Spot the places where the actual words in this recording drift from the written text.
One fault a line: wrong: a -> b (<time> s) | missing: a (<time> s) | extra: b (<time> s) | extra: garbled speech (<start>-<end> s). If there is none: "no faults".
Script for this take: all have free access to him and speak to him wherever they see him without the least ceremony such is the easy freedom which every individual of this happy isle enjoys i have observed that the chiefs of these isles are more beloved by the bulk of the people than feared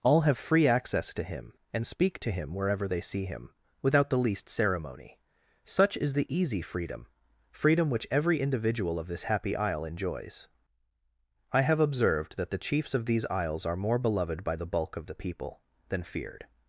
extra: freedom (7.5 s)